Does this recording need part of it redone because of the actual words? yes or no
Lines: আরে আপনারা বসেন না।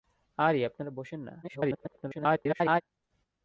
yes